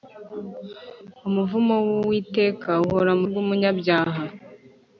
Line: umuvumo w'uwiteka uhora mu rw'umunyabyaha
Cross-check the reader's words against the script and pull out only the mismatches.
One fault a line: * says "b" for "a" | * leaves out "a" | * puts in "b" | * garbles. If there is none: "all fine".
all fine